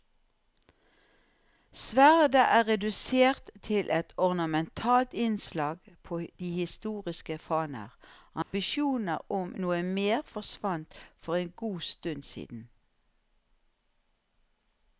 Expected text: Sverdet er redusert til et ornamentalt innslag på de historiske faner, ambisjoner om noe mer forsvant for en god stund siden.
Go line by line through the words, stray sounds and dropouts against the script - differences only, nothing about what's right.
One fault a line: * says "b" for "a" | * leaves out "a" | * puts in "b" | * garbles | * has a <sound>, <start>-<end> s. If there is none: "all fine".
* has a dropout, 8.4-8.5 s